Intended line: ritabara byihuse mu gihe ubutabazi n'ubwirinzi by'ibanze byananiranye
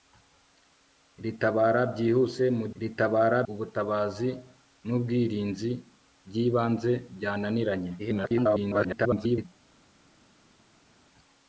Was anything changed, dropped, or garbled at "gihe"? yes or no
yes